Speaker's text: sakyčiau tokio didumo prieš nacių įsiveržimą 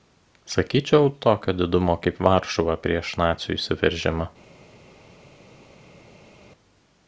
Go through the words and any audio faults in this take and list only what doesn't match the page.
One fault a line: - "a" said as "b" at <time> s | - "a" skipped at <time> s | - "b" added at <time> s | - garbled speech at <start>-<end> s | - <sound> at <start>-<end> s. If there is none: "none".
- "kaip varšuva" added at 2.0 s